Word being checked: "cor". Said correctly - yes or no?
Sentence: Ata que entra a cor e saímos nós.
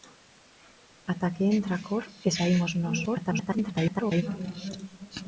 yes